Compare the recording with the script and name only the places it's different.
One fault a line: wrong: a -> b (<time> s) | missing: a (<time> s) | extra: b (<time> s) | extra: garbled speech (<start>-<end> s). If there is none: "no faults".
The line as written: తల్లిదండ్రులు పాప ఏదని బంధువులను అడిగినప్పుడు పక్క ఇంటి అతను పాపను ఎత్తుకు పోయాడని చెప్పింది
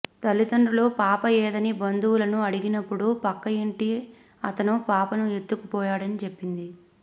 no faults